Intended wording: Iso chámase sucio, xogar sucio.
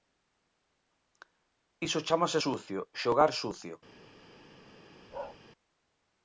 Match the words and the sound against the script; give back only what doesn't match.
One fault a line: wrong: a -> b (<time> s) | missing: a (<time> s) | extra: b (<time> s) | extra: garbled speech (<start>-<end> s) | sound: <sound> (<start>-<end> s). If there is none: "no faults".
sound: bark (5.1-5.4 s)